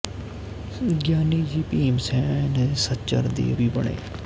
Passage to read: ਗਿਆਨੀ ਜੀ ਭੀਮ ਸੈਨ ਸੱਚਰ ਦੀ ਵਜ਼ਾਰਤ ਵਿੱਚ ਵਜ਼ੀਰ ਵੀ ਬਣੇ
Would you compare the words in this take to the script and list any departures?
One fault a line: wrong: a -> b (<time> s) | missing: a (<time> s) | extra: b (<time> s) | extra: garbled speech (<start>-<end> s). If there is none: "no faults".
missing: ਵਜ਼ਾਰਤ ਵਿੱਚ ਵਜ਼ੀਰ (3.5 s)